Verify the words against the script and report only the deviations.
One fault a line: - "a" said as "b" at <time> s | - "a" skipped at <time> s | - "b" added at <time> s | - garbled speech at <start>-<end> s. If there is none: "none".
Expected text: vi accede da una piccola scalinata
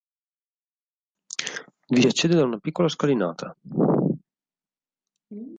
none